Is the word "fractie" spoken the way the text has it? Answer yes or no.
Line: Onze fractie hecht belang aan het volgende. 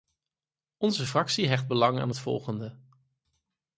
yes